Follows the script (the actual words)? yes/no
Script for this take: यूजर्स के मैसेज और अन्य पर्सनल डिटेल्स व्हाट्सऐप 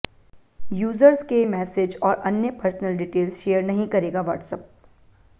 no